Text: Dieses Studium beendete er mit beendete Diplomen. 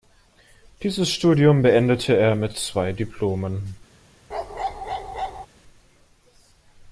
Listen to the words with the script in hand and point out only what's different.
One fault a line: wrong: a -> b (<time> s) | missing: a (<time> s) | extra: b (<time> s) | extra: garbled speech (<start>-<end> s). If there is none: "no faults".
wrong: beendete -> zwei (2.6 s)